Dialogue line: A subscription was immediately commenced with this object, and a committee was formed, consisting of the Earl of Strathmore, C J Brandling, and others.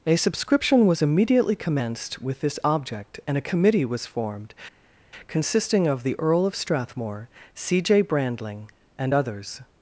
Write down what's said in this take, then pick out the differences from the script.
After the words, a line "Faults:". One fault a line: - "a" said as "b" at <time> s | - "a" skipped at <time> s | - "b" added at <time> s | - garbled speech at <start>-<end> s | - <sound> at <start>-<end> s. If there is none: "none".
A subscription was immediately commenced with this object, and a committee was formed, consisting of the Earl of Strathmore, C J Brandling, and others.
Faults:
none